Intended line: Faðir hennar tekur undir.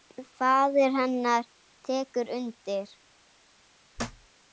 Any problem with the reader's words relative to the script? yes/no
no